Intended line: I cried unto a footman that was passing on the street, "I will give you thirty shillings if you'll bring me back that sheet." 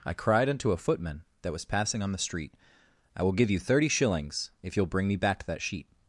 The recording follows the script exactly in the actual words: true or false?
true